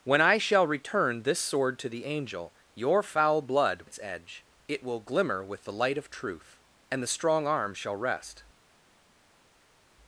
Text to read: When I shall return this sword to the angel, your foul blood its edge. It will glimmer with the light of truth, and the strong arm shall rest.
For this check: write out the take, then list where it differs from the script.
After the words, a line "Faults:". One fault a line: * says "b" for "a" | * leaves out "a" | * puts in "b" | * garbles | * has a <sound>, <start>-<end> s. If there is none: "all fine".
When I shall return this sword to the angel, your foul blood its edge. It will glimmer with the light of truth, and the strong arm shall rest.
Faults:
all fine